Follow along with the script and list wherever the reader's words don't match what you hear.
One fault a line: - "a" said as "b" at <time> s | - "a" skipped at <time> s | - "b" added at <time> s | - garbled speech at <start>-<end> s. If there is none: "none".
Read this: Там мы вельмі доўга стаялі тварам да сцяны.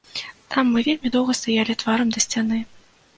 none